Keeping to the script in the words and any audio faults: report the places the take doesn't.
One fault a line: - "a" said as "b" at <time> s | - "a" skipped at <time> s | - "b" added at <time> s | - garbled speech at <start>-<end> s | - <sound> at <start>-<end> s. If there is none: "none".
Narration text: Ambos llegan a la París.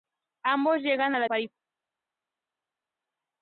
none